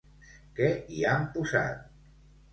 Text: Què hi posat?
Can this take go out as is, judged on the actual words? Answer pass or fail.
fail